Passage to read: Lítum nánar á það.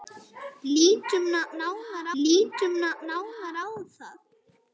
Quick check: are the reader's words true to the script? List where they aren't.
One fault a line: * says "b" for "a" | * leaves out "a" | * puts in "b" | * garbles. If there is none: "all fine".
* puts in "lítum nánar"